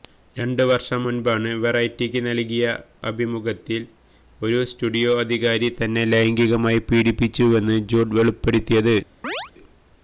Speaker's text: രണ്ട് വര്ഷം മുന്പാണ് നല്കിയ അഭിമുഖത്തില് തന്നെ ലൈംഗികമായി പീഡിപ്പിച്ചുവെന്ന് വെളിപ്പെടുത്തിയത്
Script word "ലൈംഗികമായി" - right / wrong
right